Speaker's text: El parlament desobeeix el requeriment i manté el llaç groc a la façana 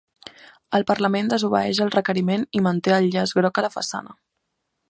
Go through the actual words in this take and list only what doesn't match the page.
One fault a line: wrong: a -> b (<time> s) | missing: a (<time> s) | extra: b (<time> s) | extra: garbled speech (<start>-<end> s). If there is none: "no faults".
no faults